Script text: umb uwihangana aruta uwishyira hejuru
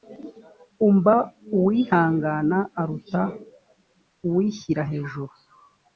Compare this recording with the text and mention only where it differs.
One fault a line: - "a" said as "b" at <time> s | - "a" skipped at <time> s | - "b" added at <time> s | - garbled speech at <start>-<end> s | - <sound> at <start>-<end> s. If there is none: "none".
none